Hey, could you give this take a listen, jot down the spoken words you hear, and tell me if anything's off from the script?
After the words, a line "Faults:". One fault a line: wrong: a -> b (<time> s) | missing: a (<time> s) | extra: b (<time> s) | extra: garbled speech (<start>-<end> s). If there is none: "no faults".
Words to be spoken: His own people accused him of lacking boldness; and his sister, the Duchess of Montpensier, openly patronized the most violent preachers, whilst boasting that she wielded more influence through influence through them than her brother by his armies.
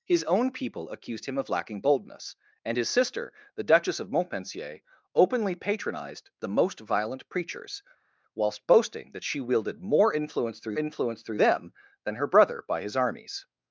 His own people accused him of lacking boldness; and his sister, the Duchess of Montpensier, openly patronized the most violent preachers, whilst boasting that she wielded more influence through influence through them than her brother by his armies.
Faults:
no faults